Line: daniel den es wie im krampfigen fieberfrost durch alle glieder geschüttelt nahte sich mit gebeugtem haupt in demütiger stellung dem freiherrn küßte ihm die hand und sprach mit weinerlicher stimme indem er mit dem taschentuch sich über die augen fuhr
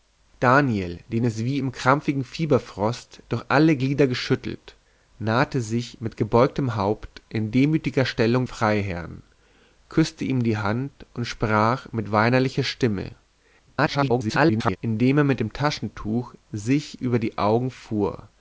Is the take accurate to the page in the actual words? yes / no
no